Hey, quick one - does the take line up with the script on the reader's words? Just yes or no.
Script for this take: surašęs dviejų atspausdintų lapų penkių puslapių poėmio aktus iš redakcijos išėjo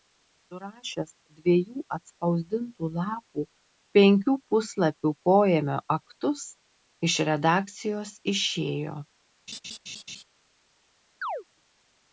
yes